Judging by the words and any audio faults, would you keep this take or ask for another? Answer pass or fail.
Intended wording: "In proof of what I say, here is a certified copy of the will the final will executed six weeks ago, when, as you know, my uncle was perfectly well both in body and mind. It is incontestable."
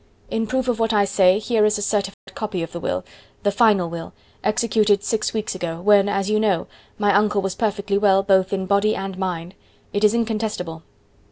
fail